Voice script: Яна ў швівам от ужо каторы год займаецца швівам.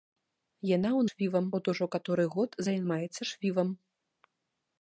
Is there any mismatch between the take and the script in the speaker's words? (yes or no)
no